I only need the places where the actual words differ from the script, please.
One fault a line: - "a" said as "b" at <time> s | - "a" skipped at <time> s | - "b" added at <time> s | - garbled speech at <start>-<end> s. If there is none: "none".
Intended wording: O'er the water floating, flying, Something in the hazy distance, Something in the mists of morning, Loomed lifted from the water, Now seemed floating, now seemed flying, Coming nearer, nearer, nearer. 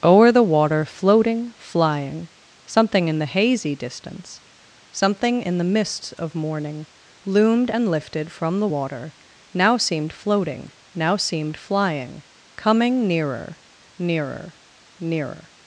- "and" added at 7.7 s